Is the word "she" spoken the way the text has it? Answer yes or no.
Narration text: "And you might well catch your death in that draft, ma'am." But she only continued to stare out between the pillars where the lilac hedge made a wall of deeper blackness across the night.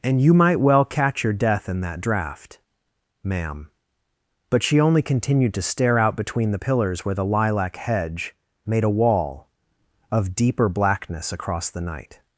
yes